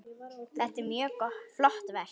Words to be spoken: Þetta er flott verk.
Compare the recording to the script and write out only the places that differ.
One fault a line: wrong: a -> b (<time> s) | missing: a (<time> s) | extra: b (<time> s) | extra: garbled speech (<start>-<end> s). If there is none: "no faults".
extra: mjög (0.9 s)